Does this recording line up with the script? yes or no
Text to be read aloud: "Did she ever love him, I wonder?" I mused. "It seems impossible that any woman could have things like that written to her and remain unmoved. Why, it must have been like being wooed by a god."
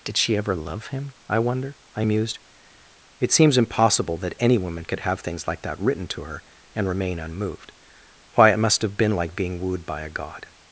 yes